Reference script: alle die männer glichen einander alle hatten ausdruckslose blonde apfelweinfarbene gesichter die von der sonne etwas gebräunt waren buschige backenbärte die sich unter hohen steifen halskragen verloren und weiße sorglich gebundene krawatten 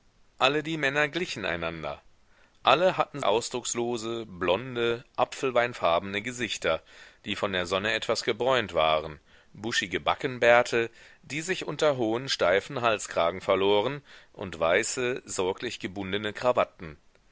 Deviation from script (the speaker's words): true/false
false